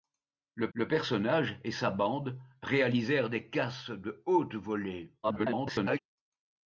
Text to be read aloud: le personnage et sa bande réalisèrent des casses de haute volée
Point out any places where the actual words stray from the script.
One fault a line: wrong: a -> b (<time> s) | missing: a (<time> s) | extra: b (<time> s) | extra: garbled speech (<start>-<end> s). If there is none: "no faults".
extra: le (0.7 s)
extra: garbled speech (5.2-6.0 s)